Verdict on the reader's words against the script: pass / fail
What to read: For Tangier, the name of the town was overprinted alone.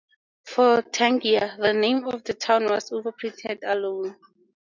pass